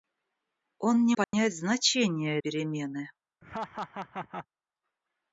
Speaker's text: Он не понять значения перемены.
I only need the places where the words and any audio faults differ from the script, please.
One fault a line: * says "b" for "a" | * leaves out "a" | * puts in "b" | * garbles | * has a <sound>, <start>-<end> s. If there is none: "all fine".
* has a dropout, 1.2-1.3 s
* has a laugh, 3.4-4.5 s